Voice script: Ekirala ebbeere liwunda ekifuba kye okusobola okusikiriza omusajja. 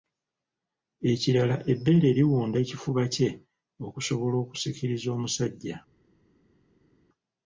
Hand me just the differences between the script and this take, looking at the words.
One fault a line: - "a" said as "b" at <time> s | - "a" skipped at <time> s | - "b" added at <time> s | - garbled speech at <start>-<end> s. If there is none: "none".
none